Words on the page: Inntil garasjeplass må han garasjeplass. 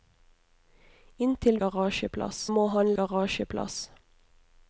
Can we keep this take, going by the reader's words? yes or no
yes